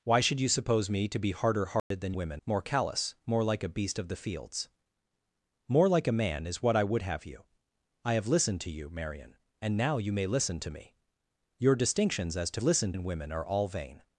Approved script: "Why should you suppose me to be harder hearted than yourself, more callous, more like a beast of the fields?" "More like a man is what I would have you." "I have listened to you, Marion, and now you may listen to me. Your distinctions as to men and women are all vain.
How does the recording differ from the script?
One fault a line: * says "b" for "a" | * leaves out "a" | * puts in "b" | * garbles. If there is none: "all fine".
* says "women" for "yourself"
* says "listened" for "men"